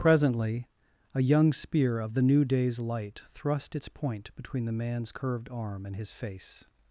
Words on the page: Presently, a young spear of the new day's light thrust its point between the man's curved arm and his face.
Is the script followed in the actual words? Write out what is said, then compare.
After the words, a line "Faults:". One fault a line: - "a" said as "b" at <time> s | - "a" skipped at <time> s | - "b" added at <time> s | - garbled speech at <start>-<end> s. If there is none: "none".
Presently, a young spear of the new day's light thrust its point between the man's curved arm and his face.
Faults:
none